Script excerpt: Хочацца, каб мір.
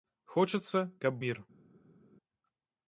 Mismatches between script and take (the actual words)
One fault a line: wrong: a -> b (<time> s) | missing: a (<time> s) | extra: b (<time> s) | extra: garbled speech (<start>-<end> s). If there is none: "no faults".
no faults